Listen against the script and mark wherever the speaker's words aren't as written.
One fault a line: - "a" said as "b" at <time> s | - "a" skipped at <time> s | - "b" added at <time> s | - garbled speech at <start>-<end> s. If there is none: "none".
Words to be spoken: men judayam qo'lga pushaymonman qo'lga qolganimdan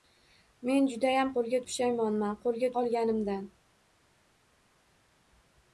none